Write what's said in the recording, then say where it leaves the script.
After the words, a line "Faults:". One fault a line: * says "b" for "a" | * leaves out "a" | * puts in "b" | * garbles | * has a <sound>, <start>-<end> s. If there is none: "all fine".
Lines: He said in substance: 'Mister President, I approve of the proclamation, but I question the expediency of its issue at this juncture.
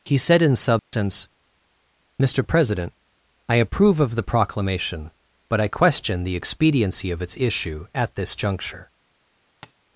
He said in substance: 'Mister President, I approve of the proclamation, but I question the expediency of its issue at this juncture.
Faults:
* has a dropout, 0.8-0.9 s
* has a tap, 9.6-9.7 s